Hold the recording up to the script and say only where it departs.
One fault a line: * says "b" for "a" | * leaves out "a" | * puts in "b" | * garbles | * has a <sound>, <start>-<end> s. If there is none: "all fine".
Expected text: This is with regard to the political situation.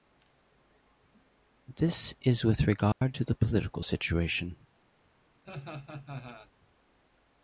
* has a dropout, 2.9-3.0 s
* has a laugh, 5.4-6.5 s